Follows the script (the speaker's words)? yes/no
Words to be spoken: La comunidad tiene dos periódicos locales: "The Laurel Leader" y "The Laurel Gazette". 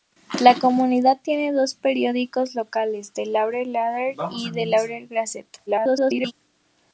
no